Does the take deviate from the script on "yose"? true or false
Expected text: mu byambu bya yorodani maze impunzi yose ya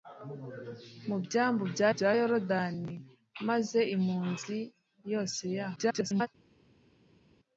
false